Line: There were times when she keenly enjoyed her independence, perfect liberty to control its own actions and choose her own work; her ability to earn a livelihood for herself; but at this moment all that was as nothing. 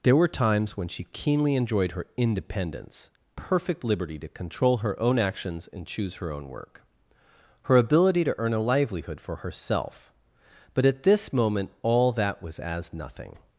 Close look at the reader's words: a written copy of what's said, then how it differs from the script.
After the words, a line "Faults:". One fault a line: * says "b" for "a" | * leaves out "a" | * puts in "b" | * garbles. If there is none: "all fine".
There were times when she keenly enjoyed her independence, perfect liberty to control her own actions and choose her own work; her ability to earn a livelihood for herself; but at this moment all that was as nothing.
Faults:
* says "her" for "its"